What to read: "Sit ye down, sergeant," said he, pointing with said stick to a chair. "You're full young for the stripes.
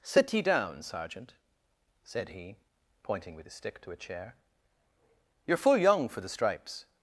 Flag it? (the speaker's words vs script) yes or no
yes